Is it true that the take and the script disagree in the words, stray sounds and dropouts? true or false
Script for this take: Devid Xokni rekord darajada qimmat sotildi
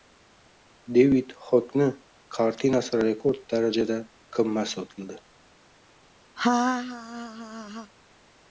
true